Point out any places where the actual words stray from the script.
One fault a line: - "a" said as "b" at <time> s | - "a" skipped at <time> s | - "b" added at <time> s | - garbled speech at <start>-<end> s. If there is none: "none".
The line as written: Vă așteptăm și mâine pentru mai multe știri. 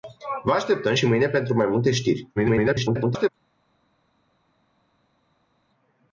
- garbled speech at 2.4-3.3 s